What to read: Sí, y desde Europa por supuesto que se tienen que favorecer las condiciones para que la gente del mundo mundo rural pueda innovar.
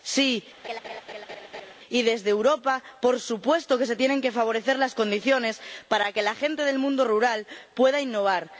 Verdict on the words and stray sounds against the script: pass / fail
fail